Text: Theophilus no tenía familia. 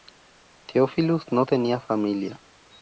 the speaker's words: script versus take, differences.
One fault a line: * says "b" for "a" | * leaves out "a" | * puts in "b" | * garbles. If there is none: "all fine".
all fine